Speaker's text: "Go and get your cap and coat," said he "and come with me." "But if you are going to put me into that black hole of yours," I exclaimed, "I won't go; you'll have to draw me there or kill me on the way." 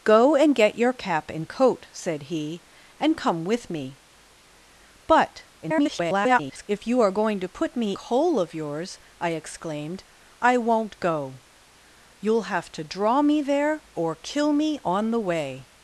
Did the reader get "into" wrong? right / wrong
wrong